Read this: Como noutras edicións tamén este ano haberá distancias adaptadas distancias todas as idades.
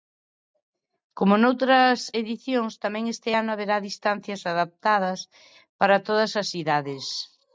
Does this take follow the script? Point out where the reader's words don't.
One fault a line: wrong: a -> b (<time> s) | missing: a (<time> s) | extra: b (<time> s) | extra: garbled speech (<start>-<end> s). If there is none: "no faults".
wrong: distancias -> para (5.8 s)